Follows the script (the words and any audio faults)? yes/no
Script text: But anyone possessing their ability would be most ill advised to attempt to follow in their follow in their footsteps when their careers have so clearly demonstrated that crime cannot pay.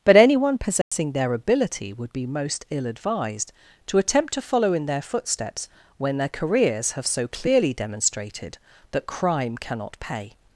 no